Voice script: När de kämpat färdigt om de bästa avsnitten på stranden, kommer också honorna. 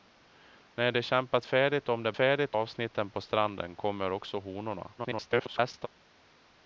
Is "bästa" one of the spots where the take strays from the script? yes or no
yes